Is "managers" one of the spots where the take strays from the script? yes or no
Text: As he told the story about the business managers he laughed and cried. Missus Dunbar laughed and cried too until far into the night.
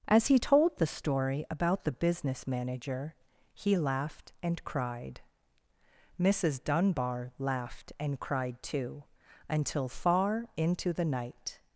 yes